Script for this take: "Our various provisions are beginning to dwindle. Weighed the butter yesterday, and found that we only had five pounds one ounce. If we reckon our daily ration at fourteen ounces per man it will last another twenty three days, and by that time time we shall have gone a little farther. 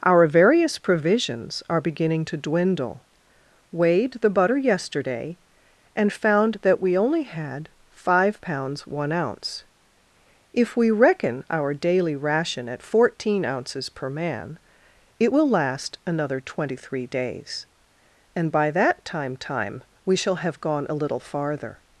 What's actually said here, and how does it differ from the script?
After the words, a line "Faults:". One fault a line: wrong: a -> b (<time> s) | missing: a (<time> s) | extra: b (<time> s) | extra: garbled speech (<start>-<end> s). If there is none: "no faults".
"Our various provisions are beginning to dwindle. Weighed the butter yesterday, and found that we only had five pounds one ounce. If we reckon our daily ration at fourteen ounces per man it will last another twenty three days, and by that time time we shall have gone a little farther.
Faults:
no faults